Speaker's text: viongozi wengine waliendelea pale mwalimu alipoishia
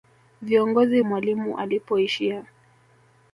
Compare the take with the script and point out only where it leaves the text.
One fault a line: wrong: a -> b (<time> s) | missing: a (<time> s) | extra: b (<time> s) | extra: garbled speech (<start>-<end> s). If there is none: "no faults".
missing: wengine waliendelea pale (1.0 s)